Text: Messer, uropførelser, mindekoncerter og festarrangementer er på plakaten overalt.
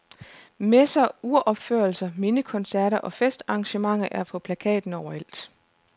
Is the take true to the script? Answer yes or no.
yes